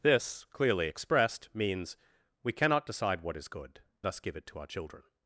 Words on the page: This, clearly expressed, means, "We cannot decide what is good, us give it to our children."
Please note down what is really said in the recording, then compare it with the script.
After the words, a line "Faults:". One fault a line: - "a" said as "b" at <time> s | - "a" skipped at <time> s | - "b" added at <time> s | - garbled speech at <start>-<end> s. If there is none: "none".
This, clearly expressed, means, "We cannot decide what is good, us give it to our children."
Faults:
none